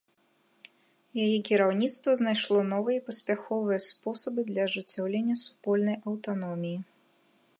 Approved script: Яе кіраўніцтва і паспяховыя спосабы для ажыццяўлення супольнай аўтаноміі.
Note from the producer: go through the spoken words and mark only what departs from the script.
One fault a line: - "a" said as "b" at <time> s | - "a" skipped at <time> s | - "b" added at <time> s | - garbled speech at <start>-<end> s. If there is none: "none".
- "знайшло новыя" added at 2.2 s